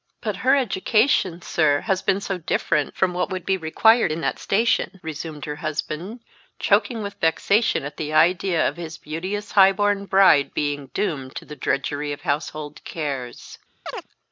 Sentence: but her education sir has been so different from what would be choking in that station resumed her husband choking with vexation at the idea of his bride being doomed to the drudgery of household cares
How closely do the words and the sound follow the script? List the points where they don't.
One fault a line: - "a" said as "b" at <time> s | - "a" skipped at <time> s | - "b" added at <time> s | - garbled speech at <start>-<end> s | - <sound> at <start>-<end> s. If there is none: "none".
- "choking" said as "required" at 3.5 s
- "beauteous high born" added at 9.0 s
- chirp at 13.9-14.1 s